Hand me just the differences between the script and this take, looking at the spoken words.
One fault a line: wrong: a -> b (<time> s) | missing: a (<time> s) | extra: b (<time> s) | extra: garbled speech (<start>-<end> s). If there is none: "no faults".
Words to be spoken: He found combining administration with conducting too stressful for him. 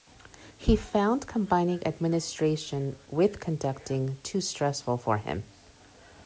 no faults